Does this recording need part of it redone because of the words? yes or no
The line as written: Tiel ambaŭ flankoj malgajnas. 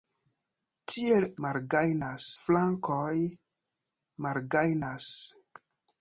yes